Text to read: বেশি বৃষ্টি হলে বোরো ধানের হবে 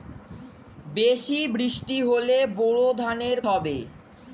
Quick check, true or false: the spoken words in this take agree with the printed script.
true